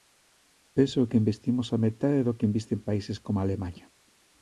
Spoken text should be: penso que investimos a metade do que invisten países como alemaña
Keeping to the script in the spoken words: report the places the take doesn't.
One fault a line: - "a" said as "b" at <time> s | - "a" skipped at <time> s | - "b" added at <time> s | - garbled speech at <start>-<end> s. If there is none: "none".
none